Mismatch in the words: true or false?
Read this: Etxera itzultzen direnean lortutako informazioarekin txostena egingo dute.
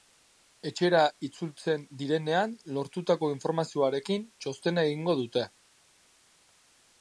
false